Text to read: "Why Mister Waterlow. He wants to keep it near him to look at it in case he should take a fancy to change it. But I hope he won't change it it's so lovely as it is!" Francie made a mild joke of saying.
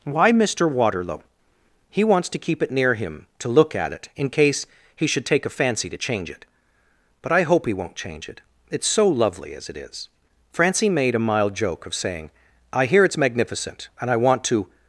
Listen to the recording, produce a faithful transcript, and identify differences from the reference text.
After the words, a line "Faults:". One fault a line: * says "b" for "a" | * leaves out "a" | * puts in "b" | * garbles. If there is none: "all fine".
"Why Mister Waterlow. He wants to keep it near him to look at it in case he should take a fancy to change it. But I hope he won't change it it's so lovely as it is!" Francie made a mild joke of saying. "I hear it's magnificent and I want to
Faults:
* puts in "I hear it's magnificent and I want to"